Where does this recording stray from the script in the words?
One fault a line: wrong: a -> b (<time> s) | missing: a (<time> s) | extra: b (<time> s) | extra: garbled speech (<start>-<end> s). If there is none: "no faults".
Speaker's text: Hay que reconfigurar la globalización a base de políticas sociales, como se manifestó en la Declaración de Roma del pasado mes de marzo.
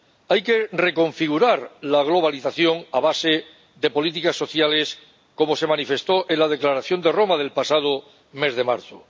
no faults